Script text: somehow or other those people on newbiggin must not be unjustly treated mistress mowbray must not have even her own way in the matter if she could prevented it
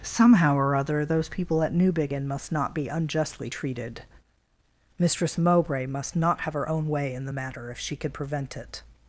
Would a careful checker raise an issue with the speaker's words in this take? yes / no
yes